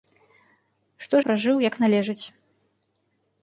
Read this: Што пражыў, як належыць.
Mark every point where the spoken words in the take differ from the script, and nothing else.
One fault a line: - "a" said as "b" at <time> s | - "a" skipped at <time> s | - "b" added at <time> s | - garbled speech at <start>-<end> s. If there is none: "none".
none